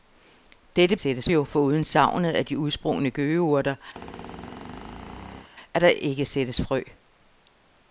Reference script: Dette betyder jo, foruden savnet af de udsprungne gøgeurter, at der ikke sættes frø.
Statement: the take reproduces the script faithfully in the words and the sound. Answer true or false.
false